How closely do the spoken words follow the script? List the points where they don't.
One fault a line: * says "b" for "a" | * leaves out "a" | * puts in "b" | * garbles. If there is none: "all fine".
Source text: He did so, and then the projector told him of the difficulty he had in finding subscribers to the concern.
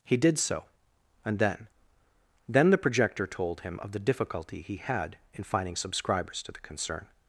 * puts in "then"